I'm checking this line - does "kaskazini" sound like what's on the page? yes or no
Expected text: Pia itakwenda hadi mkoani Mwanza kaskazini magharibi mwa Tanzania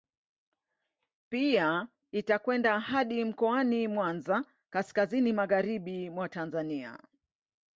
yes